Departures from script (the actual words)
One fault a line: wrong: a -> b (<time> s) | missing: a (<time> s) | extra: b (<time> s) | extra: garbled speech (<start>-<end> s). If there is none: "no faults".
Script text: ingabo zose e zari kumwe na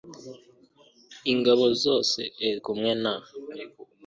missing: zari (2.5 s)